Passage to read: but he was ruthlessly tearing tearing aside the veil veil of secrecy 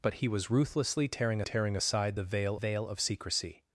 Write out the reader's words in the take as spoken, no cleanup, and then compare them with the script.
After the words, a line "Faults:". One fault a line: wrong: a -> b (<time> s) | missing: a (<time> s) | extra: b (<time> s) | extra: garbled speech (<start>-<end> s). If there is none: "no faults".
but he was ruthlessly tearing tearing aside the veil veil of secrecy
Faults:
no faults